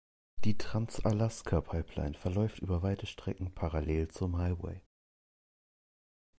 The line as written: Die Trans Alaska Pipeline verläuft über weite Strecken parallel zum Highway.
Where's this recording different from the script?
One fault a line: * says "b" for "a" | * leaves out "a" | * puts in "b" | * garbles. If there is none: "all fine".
all fine